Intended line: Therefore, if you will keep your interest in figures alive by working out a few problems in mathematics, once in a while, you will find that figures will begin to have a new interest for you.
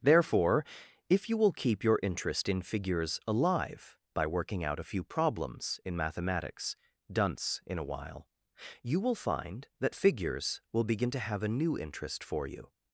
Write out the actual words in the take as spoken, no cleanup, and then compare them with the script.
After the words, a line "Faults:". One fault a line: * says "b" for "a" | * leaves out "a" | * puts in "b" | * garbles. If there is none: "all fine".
Therefore, if you will keep your interest in figures alive by working out a few problems in mathematics, dunce in a while, you will find that figures will begin to have a new interest for you.
Faults:
* says "dunce" for "once"